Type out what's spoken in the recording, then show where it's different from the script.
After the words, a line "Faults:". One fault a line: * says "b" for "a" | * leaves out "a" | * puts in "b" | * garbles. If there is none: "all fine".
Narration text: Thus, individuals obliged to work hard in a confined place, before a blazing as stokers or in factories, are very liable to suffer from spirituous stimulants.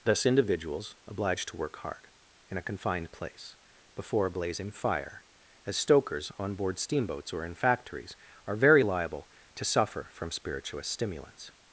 Thus, individuals obliged to work hard in a confined place, before a blazing fire, as stokers on board steamboats or in factories, are very liable to suffer from spirituous stimulants.
Faults:
* puts in "fire"
* puts in "on board steamboats"